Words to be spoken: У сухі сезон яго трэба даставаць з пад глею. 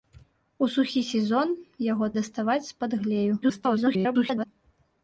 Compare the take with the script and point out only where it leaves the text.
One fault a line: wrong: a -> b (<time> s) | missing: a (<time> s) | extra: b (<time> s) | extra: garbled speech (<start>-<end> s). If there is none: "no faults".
missing: трэба (2.1 s)
extra: garbled speech (3.4-4.5 s)